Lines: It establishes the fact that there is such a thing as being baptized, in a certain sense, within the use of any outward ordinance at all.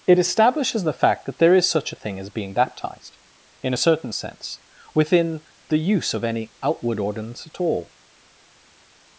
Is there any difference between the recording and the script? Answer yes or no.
no